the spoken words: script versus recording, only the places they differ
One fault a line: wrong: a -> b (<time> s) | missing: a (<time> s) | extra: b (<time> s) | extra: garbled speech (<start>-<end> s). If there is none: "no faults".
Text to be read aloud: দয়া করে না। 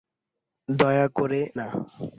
no faults